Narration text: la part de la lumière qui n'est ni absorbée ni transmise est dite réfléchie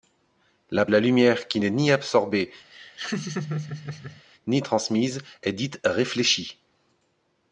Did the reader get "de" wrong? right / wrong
wrong